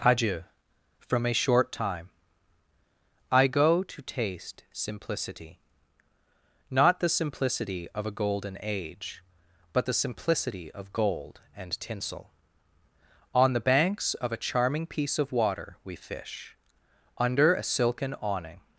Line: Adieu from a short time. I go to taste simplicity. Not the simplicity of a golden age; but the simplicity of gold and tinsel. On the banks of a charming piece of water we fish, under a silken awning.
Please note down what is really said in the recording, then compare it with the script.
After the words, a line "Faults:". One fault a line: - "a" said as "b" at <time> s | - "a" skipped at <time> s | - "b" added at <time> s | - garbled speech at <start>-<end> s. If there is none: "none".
Adieu from a short time. I go to taste simplicity. Not the simplicity of a golden age; but the simplicity of gold and tinsel. On the banks of a charming piece of water we fish, under a silken awning.
Faults:
none